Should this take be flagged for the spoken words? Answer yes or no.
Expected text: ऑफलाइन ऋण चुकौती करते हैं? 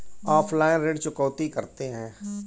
no